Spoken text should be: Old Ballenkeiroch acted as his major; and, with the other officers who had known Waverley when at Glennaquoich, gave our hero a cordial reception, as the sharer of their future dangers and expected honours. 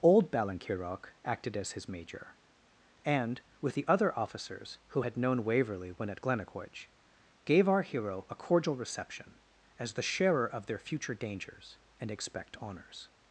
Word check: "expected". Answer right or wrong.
wrong